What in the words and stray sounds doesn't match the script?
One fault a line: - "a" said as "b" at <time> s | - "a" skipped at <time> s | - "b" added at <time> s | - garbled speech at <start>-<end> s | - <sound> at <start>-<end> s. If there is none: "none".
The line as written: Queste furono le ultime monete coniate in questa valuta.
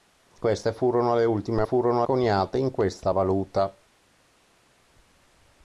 - "monete" said as "furono" at 1.6 s